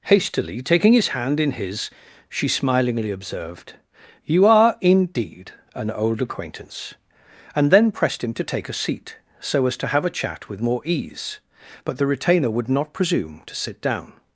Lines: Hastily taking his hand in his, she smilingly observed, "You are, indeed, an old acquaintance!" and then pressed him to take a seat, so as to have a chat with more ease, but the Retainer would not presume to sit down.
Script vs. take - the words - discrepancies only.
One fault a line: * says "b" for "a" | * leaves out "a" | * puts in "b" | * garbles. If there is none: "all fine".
all fine